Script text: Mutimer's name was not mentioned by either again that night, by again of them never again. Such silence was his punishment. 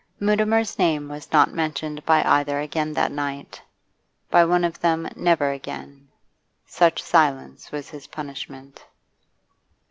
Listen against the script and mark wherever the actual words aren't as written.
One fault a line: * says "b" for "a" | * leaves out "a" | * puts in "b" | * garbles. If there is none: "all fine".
* says "one" for "again"